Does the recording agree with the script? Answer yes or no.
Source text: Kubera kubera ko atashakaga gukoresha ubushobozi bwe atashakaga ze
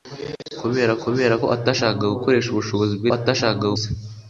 yes